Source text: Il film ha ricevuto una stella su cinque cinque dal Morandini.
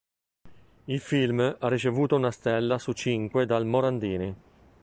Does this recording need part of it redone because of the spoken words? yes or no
yes